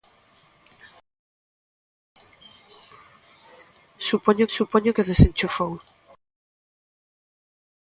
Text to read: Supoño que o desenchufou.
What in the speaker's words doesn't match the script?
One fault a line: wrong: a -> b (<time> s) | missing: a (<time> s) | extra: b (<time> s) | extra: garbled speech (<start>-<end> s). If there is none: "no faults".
extra: supoño (4.5 s)